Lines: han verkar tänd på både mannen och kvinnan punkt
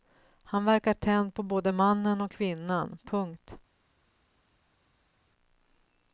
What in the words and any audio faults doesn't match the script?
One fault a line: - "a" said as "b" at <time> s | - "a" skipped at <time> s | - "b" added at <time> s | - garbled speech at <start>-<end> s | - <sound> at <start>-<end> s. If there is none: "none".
none